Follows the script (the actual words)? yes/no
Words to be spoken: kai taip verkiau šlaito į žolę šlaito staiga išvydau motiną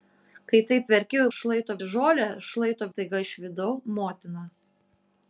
yes